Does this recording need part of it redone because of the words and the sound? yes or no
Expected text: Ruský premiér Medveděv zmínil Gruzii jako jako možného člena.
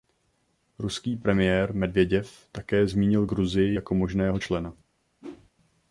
yes